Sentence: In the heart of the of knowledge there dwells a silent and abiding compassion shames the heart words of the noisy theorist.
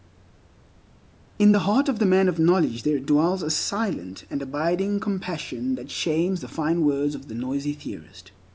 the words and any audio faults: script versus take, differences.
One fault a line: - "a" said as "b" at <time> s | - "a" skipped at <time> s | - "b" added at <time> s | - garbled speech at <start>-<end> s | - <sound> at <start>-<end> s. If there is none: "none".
- "man" added at 2.1 s
- "that" added at 5.7 s
- "heart" said as "fine" at 6.5 s